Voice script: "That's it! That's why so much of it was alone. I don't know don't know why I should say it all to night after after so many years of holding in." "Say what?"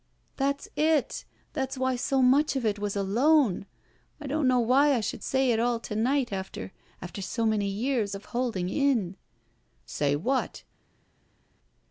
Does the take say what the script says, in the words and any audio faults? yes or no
no